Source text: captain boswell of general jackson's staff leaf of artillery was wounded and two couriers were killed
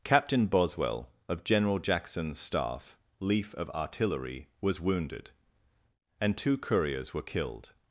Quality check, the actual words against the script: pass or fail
pass